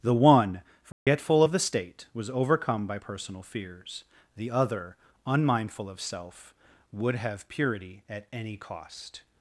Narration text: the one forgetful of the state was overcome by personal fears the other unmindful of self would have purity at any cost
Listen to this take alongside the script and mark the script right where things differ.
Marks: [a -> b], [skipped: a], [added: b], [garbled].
the one forgetful of the state was overcome by personal fears the other unmindful of self would have purity at any cost